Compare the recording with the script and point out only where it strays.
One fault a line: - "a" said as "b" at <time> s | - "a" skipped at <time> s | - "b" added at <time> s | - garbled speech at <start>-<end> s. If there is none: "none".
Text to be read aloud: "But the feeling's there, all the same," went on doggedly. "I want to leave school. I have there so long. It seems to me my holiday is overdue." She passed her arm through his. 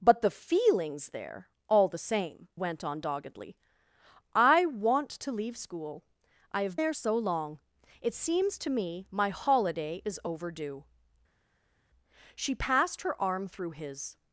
none